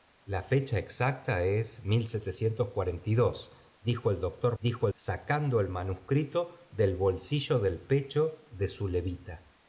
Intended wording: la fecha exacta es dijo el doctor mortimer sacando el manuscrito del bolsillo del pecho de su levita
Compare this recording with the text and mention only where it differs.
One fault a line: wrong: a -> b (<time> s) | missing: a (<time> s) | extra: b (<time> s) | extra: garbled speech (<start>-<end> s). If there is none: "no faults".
wrong: mortimer -> dijo (4.6 s)